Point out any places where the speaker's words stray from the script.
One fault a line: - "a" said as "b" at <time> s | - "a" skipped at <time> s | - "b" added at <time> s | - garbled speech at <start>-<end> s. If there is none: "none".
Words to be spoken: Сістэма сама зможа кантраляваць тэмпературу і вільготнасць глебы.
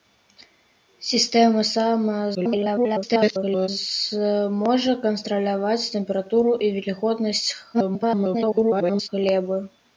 - garbled speech at 2.3-3.7 s
- garbled speech at 7.7-9.1 s